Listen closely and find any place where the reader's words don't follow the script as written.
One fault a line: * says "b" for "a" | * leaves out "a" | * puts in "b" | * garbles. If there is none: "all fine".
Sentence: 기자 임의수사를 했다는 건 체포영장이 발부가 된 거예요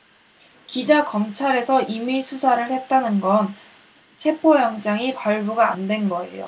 * puts in "검찰에서"
* puts in "안"